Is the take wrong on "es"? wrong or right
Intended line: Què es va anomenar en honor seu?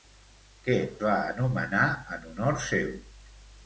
wrong